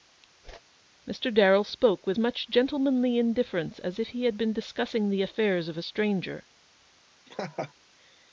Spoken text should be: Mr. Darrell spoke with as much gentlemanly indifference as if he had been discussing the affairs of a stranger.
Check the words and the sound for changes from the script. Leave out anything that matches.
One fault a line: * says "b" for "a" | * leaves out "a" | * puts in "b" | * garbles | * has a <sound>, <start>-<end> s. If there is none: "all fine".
* has a whoosh, 0.4-0.6 s
* leaves out "as"
* has a laugh, 7.3-7.7 s